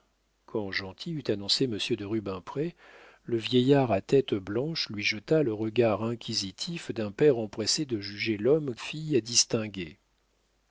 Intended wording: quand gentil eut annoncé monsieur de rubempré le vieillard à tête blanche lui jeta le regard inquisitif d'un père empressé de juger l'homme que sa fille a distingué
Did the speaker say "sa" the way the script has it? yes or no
no